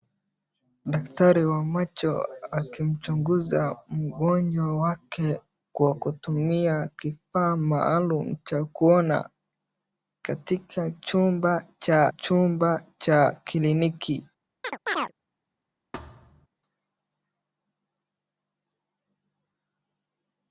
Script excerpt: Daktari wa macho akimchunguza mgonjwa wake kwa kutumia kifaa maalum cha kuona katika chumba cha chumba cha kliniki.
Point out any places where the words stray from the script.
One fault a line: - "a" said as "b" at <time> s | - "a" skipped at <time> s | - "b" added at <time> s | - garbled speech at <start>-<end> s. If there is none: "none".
none